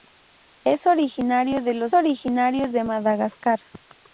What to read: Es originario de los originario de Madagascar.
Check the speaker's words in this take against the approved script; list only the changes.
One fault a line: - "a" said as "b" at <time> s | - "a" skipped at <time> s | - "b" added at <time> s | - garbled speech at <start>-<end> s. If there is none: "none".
none